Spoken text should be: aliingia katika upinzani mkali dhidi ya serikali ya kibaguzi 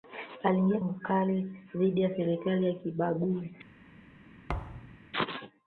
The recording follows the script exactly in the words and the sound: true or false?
false